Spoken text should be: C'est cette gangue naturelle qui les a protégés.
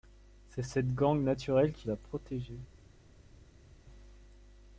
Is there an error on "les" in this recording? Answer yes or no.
yes